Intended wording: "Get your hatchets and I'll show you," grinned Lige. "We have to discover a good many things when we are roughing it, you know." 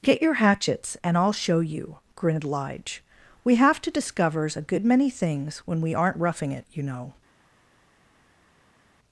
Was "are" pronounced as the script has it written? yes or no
no